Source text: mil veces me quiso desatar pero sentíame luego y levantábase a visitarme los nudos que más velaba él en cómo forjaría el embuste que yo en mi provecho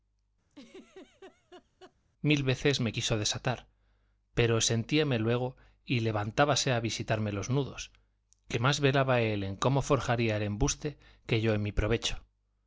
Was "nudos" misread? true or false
false